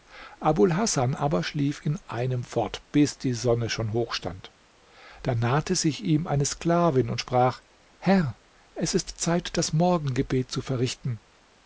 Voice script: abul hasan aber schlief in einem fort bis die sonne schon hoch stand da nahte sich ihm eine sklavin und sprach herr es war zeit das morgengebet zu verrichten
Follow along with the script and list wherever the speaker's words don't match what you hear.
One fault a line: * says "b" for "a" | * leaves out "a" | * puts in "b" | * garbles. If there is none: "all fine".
* says "ist" for "war"